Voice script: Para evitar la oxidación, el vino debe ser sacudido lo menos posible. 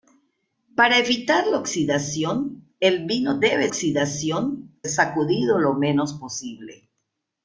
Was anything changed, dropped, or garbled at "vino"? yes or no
no